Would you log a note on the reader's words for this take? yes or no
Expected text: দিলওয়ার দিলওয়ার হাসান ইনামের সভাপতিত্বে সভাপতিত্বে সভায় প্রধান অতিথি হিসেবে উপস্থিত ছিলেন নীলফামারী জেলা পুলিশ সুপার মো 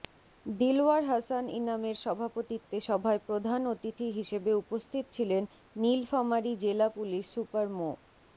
yes